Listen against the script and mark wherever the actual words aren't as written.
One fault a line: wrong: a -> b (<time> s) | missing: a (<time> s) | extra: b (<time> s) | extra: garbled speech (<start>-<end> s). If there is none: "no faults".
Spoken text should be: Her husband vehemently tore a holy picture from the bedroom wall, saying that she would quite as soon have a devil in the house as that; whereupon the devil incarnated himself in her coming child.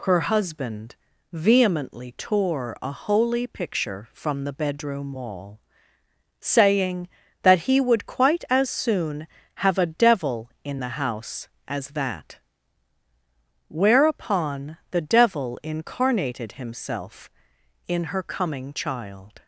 wrong: she -> he (7.6 s)